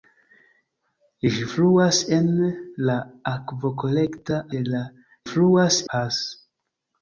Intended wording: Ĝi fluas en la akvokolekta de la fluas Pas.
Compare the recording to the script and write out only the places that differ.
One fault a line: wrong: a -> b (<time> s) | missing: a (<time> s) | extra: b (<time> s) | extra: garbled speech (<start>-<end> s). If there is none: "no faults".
no faults